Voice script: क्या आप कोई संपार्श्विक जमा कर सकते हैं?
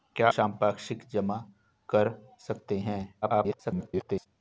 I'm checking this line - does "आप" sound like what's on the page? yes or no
no